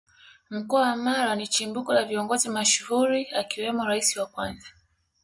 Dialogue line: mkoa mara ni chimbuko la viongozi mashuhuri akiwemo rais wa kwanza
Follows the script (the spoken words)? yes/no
no